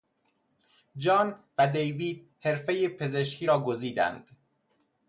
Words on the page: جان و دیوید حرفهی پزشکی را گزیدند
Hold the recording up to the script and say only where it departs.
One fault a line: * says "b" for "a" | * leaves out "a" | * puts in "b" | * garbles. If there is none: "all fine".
all fine